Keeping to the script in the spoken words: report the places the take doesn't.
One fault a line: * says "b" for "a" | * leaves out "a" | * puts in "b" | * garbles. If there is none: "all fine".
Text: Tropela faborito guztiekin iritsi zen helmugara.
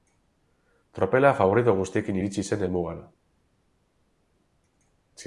all fine